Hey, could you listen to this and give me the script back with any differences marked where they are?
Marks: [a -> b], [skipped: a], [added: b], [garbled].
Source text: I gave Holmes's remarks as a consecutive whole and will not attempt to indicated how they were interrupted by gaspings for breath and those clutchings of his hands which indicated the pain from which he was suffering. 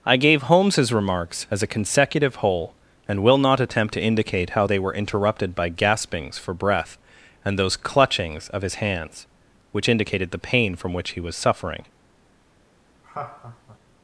I gave Holmes's remarks as a consecutive whole and will not attempt to [indicated -> indicate] how they were interrupted by gaspings for breath and those clutchings of his hands which indicated the pain from which he was suffering.